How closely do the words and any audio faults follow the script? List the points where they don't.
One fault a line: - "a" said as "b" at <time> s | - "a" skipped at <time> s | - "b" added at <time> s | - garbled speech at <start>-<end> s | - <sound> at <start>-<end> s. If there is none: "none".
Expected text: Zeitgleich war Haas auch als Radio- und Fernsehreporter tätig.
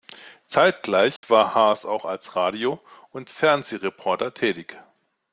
- dropout at 1.2-1.2 s